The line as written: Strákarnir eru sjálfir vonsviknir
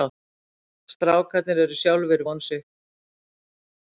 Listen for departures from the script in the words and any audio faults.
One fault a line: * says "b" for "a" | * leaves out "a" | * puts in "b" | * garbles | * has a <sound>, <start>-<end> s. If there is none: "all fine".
all fine